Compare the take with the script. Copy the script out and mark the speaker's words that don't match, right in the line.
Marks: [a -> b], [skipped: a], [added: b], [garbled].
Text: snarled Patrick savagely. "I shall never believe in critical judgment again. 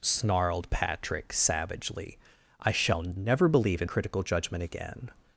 snarled Patrick savagely. "I shall never believe in critical judgment again.